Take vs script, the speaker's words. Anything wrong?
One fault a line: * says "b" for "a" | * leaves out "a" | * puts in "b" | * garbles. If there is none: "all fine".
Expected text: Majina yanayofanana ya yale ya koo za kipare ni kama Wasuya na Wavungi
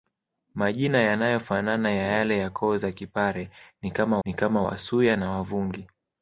* puts in "ni kama"